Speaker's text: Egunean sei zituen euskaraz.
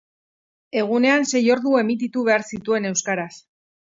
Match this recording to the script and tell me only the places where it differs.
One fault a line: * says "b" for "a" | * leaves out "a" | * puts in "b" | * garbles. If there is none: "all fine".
* puts in "ordu emititu behar"